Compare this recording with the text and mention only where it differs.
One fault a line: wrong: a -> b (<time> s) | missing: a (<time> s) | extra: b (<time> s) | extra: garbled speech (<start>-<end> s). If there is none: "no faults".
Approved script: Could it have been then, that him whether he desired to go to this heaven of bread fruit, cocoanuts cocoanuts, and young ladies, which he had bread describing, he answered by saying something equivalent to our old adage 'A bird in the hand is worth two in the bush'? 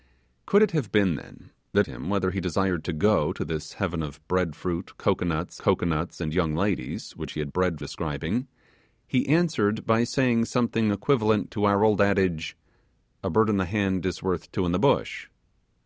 no faults